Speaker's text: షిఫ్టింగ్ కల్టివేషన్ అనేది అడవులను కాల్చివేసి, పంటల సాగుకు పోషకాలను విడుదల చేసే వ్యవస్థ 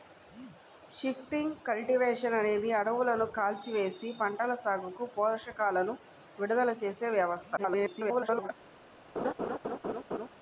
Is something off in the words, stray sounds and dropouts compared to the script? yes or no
yes